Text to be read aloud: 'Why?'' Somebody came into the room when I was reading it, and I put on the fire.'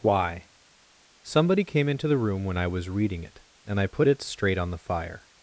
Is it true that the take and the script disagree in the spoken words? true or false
true